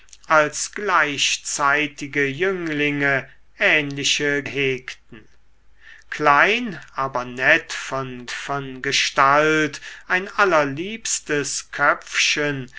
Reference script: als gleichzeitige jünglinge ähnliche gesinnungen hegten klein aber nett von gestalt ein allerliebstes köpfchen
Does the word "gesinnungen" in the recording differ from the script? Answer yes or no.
yes